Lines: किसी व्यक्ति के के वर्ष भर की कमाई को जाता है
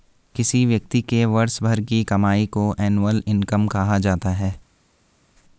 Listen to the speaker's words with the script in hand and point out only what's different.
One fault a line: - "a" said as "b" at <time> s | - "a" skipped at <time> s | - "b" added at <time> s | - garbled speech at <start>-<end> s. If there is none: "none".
- "के" skipped at 1.2 s
- "एनुअल इनकम कहा" added at 2.8 s